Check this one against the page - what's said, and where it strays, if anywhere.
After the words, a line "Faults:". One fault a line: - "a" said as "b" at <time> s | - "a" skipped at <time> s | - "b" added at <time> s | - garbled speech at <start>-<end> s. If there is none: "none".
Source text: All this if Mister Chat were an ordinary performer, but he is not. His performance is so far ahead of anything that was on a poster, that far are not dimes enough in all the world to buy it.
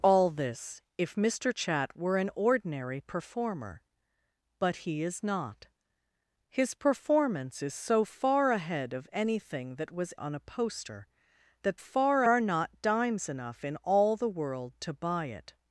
All this if Mister Chat were an ordinary performer, but he is not. His performance is so far ahead of anything that was on a poster, that far are not dimes enough in all the world to buy it.
Faults:
none